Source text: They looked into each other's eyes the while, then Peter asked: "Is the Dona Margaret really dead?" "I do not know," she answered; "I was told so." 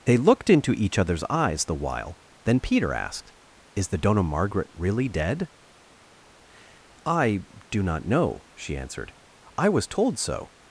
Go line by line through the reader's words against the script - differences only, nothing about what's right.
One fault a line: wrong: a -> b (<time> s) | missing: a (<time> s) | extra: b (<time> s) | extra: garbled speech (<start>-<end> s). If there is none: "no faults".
no faults